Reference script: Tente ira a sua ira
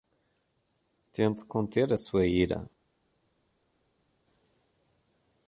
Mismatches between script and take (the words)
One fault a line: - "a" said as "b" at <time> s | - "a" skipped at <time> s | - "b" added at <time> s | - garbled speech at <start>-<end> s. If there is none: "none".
- "ira" said as "conter" at 1.4 s